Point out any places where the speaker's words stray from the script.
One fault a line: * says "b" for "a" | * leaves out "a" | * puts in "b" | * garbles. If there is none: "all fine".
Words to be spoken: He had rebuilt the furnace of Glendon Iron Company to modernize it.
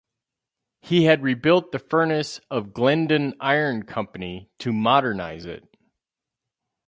all fine